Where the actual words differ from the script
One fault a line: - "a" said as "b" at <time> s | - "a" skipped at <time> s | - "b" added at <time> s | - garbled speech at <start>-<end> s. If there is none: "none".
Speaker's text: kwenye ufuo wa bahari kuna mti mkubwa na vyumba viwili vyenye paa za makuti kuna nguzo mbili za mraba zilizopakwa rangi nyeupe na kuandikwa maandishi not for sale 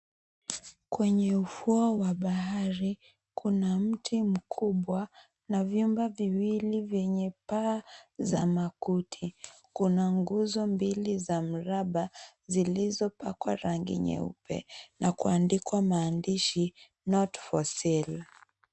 none